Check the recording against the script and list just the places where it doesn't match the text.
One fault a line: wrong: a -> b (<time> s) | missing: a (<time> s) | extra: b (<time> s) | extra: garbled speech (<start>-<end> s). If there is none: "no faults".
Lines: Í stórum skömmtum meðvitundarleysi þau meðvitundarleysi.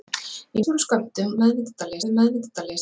no faults